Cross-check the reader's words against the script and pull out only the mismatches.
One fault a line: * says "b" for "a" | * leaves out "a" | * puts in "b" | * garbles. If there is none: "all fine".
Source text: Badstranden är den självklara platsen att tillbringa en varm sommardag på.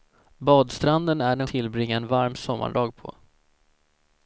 * leaves out "självklara platsen att"